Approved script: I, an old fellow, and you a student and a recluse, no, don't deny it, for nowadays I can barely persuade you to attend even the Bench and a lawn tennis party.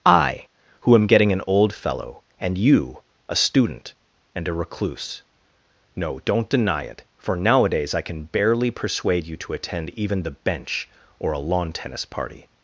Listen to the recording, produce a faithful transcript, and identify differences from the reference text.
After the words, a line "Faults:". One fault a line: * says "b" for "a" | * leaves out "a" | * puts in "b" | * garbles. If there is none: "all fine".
I, who am getting an old fellow, and you a student and a recluse, no, don't deny it, for nowadays I can barely persuade you to attend even the Bench or a lawn tennis party.
Faults:
* puts in "who am getting"
* says "or" for "and"